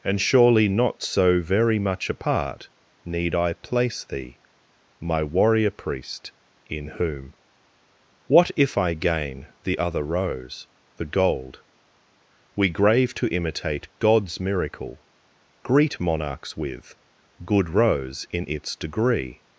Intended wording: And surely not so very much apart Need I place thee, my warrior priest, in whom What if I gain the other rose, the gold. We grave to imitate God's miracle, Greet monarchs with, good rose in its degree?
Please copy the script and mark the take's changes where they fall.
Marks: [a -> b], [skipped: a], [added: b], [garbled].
And surely not so very much apart Need I place thee, my warrior priest, in whom What if I gain the other rose, the gold. We grave to imitate God's miracle, Greet monarchs with, good rose in its degree?